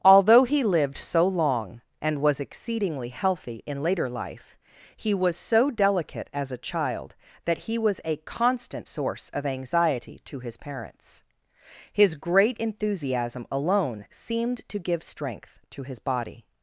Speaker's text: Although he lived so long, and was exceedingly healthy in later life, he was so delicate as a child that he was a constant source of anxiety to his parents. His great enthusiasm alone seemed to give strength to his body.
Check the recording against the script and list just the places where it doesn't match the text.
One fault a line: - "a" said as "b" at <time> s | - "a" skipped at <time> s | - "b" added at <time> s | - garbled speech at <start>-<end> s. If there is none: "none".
none